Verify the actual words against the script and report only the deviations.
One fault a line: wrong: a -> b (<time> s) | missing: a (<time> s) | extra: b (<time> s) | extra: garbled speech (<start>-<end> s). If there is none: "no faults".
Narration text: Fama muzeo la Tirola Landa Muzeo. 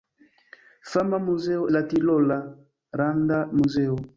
no faults